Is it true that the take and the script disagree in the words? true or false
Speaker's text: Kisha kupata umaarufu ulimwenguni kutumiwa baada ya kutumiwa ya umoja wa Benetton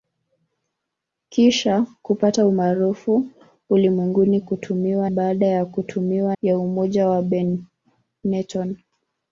false